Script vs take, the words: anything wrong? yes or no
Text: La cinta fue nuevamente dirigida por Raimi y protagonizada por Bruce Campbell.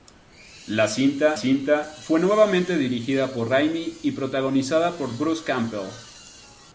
yes